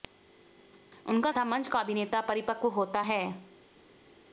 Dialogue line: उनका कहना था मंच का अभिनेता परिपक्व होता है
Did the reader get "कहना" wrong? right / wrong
wrong